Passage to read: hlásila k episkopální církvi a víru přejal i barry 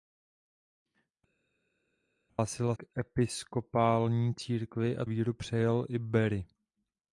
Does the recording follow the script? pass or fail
pass